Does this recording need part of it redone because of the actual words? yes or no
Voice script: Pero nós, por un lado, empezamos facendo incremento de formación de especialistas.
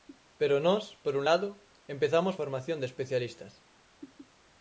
yes